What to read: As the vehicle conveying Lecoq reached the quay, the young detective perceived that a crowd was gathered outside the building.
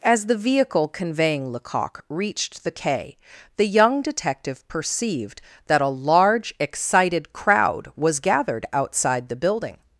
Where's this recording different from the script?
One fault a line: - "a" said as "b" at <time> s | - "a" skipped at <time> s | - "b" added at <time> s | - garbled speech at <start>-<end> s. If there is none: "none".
- "large excited" added at 5.9 s